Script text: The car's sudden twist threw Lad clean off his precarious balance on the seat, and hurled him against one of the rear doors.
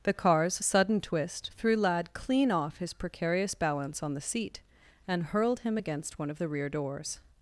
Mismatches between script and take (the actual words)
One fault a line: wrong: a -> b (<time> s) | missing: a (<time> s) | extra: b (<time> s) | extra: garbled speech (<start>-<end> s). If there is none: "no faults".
no faults